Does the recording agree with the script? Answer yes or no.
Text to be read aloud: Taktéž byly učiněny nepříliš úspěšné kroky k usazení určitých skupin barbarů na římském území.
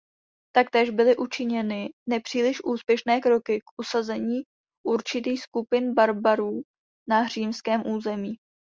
yes